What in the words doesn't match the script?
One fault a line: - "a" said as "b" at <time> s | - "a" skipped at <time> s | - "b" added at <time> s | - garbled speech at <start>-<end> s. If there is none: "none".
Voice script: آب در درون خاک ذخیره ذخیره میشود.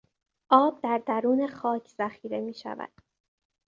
- "ذخیره" skipped at 2.4 s